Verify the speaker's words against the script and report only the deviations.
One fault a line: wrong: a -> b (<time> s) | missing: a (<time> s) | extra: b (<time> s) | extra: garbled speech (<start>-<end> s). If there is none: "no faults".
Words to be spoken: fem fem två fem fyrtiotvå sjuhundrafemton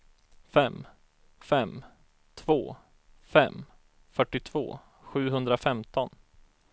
no faults